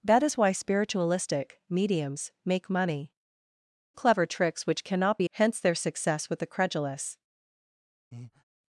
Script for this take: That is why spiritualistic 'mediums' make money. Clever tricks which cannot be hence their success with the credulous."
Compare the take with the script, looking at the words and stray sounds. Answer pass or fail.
fail